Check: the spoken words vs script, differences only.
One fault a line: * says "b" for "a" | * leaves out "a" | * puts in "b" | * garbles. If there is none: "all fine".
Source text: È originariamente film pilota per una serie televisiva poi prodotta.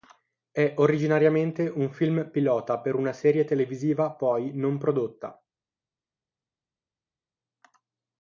* puts in "un"
* puts in "non"